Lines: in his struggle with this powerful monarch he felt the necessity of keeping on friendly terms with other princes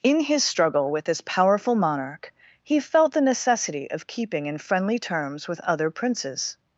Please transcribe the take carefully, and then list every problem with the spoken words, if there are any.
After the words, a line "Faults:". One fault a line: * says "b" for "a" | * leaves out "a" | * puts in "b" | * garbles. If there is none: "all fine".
in his struggle with this powerful monarch he felt the necessity of keeping in friendly terms with other princes
Faults:
* says "in" for "on"